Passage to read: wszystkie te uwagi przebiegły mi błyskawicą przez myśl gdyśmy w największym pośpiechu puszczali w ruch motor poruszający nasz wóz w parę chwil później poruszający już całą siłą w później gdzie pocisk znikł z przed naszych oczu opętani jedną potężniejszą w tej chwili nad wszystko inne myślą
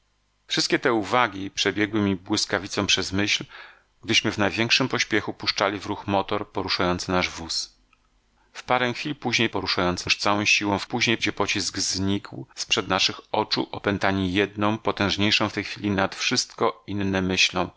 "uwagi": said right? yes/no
yes